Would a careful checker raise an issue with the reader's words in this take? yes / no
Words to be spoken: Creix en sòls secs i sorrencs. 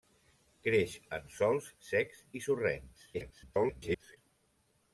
yes